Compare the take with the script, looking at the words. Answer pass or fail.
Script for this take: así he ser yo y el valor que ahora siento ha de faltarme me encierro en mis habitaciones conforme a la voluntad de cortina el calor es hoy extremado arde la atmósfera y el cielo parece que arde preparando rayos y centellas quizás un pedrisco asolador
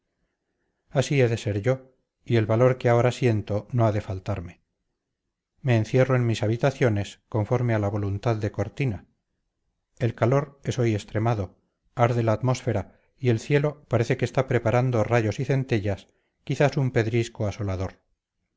fail